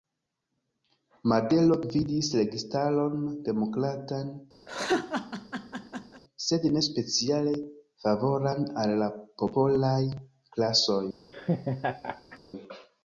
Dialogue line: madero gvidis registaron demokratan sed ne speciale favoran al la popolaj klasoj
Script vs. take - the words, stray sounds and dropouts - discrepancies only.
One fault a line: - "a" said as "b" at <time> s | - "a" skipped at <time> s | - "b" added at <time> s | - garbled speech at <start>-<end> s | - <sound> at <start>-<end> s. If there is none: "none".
- laugh at 4.7-6.2 s
- laugh at 11.3-12.4 s